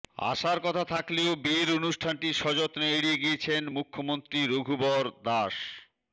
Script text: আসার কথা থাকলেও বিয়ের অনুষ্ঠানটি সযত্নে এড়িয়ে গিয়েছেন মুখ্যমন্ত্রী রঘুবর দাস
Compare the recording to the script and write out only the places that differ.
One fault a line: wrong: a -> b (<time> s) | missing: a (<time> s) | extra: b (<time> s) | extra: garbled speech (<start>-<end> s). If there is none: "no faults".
no faults